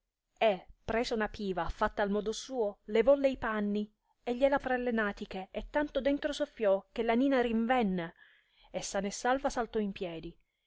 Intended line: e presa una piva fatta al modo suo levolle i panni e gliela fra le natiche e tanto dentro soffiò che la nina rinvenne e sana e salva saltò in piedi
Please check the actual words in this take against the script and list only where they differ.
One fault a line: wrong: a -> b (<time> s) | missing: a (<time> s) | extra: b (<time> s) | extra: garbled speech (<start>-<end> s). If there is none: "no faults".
no faults